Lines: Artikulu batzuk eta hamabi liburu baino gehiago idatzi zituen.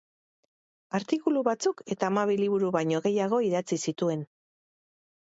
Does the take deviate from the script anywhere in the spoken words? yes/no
no